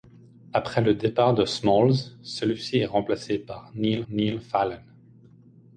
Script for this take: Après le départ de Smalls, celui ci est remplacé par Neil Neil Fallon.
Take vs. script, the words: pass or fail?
pass